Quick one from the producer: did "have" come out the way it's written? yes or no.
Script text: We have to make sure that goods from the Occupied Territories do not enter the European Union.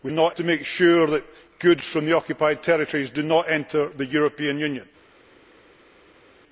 no